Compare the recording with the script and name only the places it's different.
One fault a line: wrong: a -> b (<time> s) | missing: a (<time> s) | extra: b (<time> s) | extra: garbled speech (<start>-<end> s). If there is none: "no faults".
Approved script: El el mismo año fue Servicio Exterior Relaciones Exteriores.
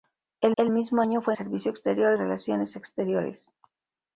no faults